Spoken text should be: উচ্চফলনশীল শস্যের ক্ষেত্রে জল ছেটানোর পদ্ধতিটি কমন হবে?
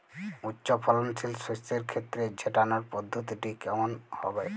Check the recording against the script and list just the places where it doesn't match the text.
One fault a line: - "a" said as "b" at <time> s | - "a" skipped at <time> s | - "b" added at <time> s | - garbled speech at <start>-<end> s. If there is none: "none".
- "জল" skipped at 2.2 s